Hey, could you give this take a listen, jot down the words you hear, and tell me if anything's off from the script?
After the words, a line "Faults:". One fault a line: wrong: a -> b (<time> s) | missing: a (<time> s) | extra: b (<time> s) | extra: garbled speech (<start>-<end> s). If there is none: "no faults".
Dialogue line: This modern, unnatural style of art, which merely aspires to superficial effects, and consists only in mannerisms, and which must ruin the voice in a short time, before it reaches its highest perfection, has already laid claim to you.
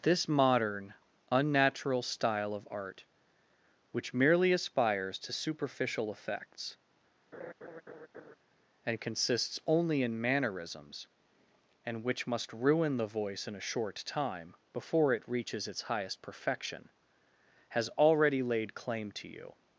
This modern, unnatural style of art, which merely aspires to superficial effects, and consists only in mannerisms, and which must ruin the voice in a short time, before it reaches its highest perfection, has already laid claim to you.
Faults:
no faults